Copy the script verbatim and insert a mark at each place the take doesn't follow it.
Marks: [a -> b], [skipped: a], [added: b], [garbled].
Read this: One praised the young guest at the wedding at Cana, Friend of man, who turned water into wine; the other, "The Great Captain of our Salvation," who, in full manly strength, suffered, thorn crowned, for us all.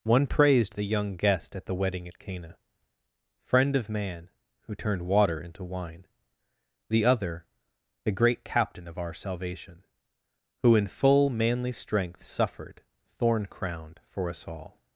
One praised the young guest at the wedding at Cana, Friend of man, who turned water into wine; the other, "The Great Captain of our Salvation," who, in full manly strength, suffered, thorn crowned, for us all.